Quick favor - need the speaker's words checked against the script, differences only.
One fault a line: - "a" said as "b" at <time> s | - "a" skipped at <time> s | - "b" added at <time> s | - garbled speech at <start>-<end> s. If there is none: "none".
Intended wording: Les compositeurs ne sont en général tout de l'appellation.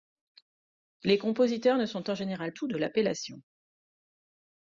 none